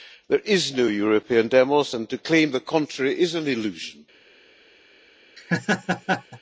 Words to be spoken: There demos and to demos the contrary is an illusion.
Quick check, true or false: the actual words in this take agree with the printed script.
false